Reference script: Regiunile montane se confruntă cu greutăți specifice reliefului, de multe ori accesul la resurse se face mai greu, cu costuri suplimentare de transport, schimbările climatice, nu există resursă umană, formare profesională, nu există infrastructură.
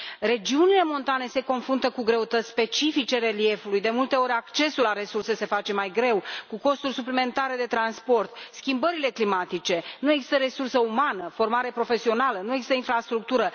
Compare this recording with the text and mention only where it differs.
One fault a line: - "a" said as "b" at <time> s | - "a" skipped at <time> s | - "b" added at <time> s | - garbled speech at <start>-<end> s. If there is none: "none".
none